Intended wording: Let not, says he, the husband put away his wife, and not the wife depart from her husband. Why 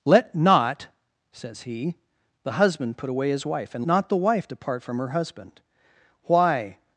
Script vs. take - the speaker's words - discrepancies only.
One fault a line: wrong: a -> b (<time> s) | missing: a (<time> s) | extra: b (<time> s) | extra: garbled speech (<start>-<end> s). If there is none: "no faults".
no faults